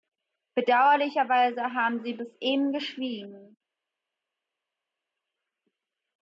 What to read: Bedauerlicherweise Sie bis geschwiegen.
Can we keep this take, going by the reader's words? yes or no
no